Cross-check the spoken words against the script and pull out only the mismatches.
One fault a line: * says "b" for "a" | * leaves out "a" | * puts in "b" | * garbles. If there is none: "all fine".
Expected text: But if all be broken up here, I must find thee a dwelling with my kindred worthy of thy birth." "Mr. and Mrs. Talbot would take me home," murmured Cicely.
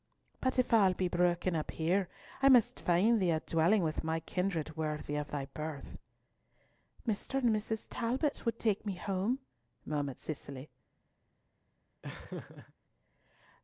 all fine